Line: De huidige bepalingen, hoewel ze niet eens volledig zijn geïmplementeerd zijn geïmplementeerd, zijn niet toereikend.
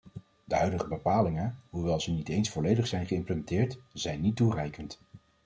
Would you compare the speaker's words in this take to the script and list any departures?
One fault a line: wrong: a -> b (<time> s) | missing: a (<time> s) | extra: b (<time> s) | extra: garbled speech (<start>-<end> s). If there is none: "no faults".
missing: geïmplementeerd zijn (4.2 s)